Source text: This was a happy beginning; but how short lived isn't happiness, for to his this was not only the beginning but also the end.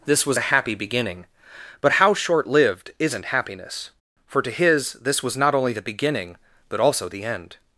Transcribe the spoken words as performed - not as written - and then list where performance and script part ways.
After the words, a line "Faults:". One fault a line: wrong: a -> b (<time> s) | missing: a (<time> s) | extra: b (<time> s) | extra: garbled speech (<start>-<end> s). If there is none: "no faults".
This was a happy beginning; but how short lived isn't happiness, for to his this was not only the beginning but also the end.
Faults:
no faults